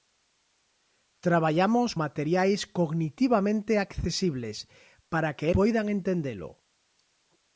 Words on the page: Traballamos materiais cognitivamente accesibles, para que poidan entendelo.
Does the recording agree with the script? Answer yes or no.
yes